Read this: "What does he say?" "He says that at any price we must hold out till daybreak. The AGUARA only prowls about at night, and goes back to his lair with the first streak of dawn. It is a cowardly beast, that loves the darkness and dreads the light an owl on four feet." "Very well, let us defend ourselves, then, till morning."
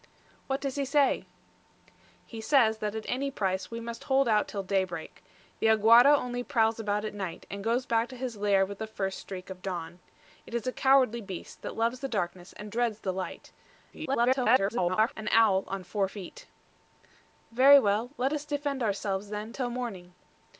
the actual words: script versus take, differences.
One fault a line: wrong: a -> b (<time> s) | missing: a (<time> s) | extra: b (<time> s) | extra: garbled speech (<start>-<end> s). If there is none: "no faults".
extra: garbled speech (13.9-15.1 s)